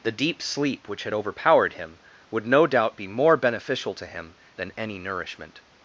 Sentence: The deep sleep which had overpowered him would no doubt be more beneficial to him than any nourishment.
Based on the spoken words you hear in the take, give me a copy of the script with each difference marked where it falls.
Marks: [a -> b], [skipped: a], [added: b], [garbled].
The deep sleep which had overpowered him would no doubt be more beneficial to him than any nourishment.